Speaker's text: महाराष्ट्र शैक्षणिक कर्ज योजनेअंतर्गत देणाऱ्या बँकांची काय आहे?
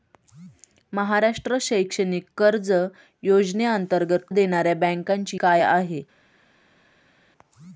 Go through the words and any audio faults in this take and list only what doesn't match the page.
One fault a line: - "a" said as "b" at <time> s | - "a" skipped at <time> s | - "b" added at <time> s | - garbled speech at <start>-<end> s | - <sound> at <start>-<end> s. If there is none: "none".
none